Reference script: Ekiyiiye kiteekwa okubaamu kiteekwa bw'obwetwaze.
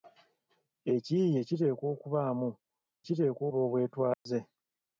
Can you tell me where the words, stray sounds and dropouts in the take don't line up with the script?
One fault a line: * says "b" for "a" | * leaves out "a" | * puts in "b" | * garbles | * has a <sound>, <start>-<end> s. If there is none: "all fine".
* has a dropout, 4.1-4.3 s